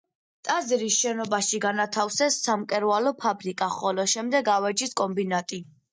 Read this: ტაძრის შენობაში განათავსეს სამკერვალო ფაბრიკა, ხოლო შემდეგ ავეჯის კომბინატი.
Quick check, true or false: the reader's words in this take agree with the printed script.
true